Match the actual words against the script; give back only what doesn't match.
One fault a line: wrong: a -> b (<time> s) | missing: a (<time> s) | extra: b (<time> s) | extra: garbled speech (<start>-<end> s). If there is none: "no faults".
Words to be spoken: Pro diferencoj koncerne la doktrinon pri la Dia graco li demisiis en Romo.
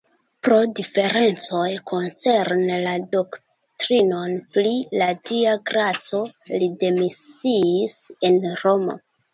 no faults